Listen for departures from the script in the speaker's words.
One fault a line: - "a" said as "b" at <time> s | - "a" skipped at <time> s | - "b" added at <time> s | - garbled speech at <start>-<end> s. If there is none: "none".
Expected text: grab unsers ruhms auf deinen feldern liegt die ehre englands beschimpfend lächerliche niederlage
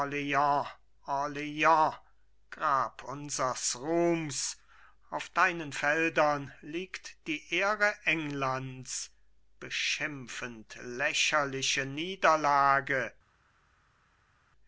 none